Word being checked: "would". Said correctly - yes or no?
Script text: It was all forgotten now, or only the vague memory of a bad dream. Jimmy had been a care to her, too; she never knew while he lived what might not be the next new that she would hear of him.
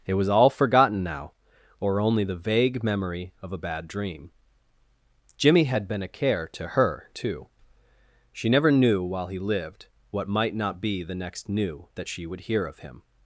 yes